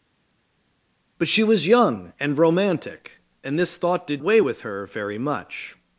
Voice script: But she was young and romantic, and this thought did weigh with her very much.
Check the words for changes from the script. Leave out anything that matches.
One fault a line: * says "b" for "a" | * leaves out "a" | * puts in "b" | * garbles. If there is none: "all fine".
all fine